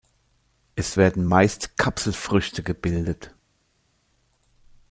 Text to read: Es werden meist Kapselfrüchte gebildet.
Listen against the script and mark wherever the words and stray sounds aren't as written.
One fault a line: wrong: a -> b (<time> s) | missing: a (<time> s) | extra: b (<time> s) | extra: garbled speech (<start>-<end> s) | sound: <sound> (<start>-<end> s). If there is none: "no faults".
no faults